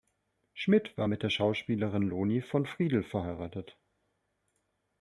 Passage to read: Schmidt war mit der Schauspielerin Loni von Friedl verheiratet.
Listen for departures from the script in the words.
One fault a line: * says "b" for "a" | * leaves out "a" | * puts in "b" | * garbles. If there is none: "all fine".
all fine